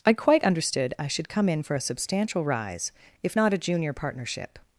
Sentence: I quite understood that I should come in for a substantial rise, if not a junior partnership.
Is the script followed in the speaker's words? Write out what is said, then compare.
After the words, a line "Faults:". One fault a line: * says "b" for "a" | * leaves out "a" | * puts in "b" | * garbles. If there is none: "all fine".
I quite understood I should come in for a substantial rise, if not a junior partnership.
Faults:
* leaves out "that"